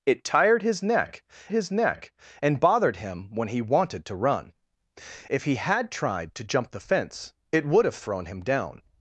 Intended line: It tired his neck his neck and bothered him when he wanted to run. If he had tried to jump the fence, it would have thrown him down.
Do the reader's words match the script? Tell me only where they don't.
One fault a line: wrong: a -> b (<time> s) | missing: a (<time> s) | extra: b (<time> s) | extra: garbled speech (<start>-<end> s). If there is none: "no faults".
no faults